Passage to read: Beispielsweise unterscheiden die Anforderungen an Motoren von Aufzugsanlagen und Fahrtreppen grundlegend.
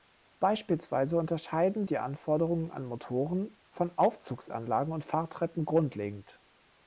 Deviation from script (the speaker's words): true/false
false